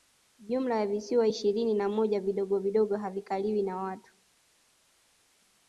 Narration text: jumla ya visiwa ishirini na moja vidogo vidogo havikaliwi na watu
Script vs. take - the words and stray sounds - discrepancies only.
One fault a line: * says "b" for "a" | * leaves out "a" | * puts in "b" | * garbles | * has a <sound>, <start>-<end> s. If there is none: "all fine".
all fine